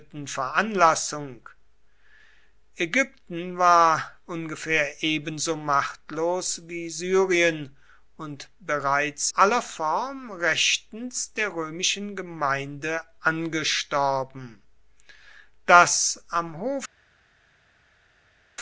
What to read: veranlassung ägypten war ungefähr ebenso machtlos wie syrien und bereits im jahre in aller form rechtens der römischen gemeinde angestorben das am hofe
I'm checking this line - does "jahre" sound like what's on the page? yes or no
no